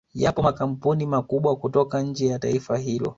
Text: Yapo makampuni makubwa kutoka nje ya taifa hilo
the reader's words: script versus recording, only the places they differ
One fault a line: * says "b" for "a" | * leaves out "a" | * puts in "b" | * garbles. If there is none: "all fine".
all fine